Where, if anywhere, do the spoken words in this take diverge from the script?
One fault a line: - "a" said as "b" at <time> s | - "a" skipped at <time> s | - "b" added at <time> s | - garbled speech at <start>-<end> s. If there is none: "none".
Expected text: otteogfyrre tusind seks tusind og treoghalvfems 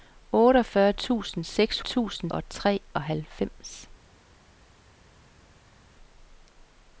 none